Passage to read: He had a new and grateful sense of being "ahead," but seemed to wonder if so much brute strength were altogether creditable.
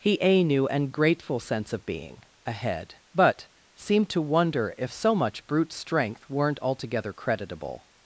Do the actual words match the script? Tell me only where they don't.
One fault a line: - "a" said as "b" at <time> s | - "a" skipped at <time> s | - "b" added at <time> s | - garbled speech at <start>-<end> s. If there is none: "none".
- "had" skipped at 0.2 s
- "were" said as "weren't" at 6.3 s